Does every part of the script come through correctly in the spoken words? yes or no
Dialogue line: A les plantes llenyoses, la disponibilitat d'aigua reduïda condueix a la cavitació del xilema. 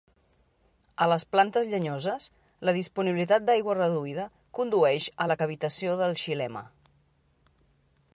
yes